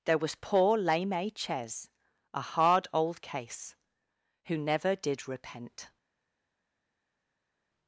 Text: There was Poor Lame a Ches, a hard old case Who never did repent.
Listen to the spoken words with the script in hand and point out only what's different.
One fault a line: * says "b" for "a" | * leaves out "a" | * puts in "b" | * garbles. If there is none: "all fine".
all fine